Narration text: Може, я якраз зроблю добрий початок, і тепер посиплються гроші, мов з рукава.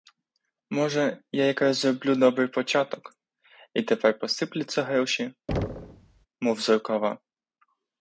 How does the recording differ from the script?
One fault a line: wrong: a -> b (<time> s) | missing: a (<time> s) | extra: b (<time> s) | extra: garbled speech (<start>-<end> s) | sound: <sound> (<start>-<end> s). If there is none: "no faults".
sound: thud (5.5-6.3 s)